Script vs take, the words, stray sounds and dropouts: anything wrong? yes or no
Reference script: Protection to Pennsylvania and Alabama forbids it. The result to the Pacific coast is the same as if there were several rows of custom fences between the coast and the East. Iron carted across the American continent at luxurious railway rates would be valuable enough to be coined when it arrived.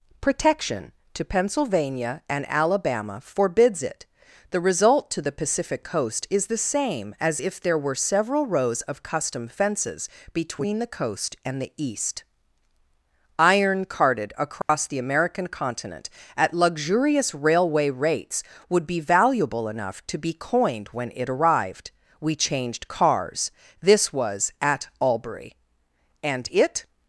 yes